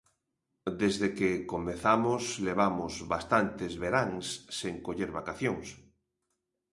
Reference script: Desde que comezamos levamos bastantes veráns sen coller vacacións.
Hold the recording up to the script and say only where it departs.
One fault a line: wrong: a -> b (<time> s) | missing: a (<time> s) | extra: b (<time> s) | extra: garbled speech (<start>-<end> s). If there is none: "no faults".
no faults